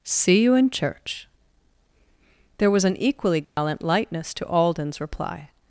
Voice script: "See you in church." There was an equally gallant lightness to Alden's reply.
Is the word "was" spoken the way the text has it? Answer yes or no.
yes